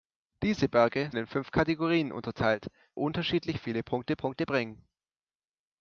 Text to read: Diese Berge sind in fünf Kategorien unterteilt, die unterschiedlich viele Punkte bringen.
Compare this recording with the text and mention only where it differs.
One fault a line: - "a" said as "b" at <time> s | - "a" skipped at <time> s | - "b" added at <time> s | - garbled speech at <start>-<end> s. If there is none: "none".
- "sind" skipped at 1.1 s
- "die" skipped at 2.7 s
- "Punkte" added at 4.1 s